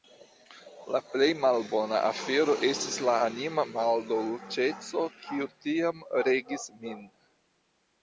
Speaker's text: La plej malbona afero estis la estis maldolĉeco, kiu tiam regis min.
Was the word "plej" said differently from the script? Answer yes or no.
no